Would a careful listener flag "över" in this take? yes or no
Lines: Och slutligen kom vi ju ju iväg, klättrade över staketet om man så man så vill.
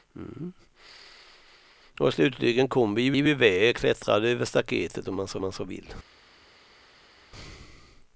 no